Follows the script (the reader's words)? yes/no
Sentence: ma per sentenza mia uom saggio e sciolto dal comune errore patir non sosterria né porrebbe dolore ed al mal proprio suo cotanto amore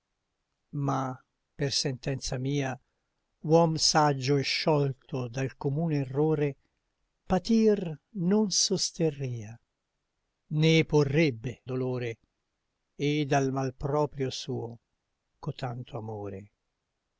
yes